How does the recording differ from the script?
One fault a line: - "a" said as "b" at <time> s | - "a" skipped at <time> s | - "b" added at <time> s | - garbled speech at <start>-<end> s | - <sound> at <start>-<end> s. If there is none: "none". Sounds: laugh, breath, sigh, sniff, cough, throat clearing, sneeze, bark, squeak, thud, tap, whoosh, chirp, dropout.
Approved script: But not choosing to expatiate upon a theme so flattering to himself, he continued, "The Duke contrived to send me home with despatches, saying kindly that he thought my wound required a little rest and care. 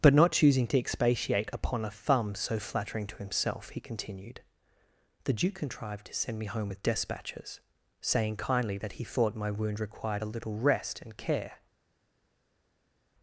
- "theme" said as "thumb" at 1.9 s